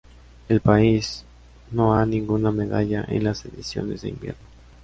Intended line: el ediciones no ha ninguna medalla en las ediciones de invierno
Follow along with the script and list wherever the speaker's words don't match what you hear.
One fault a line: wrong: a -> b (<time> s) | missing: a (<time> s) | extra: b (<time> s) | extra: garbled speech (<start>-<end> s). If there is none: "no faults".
wrong: ediciones -> país (0.6 s)